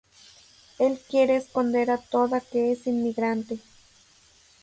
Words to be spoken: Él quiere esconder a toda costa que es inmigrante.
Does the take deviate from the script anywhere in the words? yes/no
yes